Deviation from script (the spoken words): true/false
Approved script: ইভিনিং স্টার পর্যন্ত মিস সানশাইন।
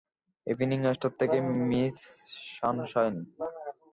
true